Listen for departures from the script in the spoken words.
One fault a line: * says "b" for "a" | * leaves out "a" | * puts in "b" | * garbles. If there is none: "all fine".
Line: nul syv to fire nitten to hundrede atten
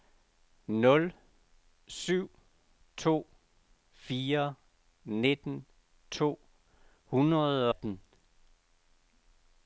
all fine